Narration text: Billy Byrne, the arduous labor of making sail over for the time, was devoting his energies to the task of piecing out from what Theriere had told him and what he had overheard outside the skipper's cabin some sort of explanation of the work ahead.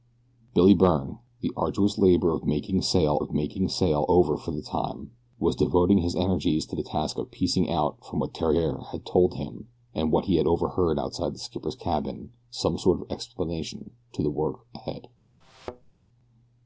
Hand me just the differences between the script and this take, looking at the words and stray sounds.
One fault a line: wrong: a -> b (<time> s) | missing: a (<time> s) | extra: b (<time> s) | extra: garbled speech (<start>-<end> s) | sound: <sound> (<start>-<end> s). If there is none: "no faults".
extra: of making sail (3.2 s)
sound: thud (15.4-15.9 s)